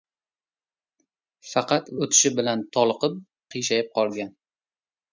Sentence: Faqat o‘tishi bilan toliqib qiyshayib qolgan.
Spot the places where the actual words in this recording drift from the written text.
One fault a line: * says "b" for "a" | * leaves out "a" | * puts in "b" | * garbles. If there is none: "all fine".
all fine